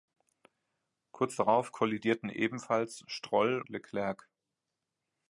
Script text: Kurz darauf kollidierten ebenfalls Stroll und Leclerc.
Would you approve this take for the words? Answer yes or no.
no